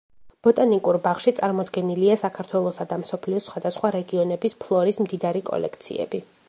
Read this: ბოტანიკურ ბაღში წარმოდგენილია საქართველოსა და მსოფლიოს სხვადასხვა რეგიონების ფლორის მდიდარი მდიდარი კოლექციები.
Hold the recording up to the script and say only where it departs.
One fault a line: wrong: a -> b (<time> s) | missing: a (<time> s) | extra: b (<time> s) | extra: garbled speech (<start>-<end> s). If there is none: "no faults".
missing: მდიდარი (5.5 s)